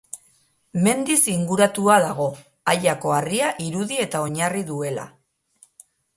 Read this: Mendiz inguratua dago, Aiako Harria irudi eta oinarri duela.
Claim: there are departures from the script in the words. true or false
false